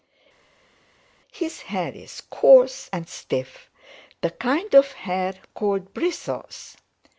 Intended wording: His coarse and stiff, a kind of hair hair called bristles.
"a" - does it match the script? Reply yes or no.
no